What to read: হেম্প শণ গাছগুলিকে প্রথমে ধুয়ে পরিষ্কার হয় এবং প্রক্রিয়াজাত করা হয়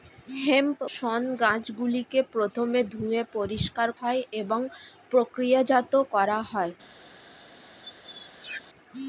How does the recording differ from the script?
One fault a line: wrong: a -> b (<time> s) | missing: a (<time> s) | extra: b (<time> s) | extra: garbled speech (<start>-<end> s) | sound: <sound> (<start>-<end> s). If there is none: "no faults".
sound: squeak (7.8-8.6 s)